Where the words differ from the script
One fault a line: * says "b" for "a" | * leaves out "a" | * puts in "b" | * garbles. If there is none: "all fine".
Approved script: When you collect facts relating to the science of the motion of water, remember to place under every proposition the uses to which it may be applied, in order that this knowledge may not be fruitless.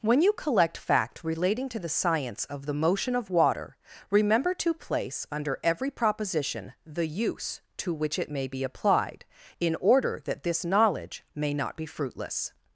* says "fact" for "facts"
* says "use" for "uses"